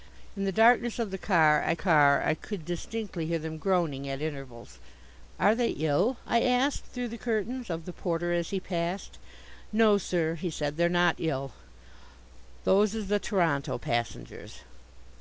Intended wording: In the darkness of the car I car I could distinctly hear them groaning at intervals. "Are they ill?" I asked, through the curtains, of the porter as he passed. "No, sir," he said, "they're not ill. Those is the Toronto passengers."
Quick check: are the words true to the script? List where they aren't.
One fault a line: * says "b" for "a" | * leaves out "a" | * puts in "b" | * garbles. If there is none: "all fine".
all fine